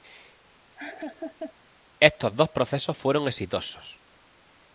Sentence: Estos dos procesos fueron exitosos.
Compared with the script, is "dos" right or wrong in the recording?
right